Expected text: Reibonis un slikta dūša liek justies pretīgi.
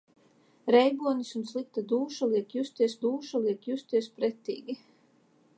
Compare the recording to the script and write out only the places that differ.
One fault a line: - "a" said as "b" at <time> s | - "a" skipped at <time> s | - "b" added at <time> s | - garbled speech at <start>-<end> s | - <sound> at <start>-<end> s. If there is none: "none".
- "dūša liek justies" added at 3.1 s